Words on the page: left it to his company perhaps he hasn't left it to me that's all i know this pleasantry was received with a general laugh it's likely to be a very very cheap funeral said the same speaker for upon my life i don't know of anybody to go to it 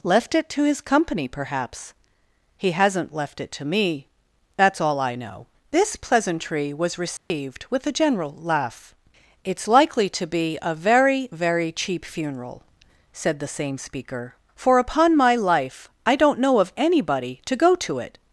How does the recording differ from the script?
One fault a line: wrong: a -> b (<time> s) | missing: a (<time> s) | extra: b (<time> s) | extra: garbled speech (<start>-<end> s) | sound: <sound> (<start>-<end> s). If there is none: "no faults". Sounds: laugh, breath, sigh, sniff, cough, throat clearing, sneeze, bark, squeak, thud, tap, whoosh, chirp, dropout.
sound: dropout (7.2-7.3 s)